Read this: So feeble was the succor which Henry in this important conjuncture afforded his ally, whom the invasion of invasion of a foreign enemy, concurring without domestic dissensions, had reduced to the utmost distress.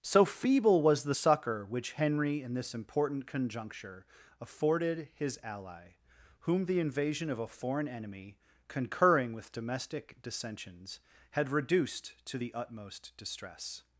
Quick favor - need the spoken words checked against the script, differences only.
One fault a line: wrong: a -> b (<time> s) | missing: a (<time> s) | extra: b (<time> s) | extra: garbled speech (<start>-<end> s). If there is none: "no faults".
missing: invasion of (7.4 s)
wrong: without -> with (9.3 s)